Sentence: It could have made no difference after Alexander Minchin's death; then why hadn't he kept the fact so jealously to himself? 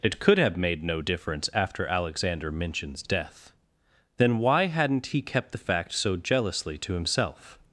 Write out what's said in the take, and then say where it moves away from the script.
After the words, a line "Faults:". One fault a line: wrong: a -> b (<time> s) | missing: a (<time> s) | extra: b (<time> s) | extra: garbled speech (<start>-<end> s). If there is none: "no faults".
It could have made no difference after Alexander Minchin's death; then why hadn't he kept the fact so jealously to himself?
Faults:
no faults